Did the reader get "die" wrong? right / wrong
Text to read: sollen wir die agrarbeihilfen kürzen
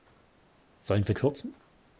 wrong